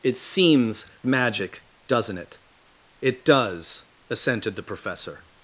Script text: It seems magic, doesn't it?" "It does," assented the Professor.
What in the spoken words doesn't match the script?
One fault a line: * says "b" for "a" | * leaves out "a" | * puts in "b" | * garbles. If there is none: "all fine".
all fine